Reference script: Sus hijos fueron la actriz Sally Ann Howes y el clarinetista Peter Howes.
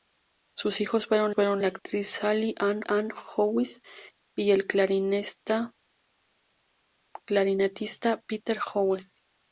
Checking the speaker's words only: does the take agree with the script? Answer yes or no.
no